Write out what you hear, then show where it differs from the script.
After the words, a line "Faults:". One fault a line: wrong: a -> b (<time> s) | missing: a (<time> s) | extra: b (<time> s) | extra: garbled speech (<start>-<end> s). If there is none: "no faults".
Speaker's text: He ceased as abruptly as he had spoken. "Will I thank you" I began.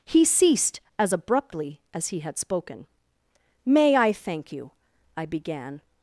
He ceased as abruptly as he had spoken. "May I thank you" I began.
Faults:
wrong: Will -> May (3.7 s)